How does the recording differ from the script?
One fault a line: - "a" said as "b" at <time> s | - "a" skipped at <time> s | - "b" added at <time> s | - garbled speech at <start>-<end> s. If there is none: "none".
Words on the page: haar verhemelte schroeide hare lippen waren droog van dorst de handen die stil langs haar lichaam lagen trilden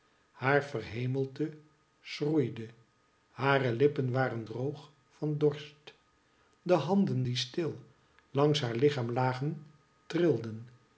none